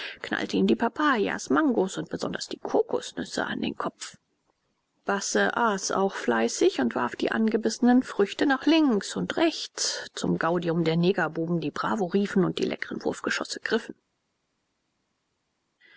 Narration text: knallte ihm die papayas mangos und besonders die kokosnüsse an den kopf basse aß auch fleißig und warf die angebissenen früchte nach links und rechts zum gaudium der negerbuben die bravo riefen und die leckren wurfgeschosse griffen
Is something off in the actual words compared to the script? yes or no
no